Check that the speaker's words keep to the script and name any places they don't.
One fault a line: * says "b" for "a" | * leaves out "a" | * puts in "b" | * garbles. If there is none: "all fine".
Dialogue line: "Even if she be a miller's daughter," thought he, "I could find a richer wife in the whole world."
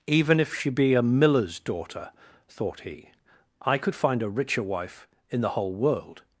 all fine